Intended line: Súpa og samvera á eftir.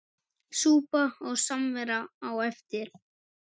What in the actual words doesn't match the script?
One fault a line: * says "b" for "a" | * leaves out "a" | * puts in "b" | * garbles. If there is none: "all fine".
all fine